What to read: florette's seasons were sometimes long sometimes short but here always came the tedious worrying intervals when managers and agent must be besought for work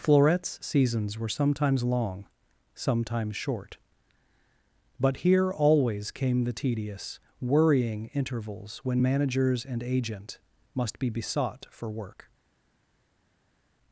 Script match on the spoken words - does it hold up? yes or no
yes